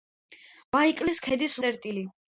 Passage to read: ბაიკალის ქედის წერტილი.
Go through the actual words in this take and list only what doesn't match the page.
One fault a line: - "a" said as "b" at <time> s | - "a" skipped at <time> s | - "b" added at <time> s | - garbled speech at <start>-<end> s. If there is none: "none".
none